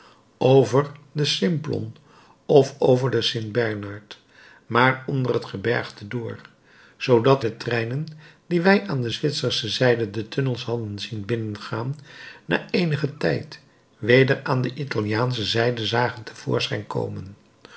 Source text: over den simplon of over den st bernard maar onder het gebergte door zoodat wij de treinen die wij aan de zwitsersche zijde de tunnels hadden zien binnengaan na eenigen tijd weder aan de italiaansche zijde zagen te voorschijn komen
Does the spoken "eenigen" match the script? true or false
true